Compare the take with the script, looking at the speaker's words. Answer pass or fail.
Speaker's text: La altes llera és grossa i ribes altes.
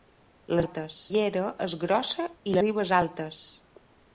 pass